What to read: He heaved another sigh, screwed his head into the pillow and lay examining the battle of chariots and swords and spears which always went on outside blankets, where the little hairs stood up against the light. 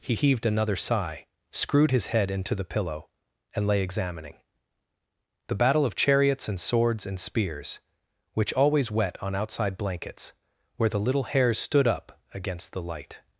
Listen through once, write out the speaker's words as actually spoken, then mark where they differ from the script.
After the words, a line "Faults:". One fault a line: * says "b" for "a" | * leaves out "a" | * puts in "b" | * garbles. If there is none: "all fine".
He heaved another sigh, screwed his head into the pillow and lay examining the battle of chariots and swords and spears which always wet on outside blankets, where the little hairs stood up against the light.
Faults:
* says "wet" for "went"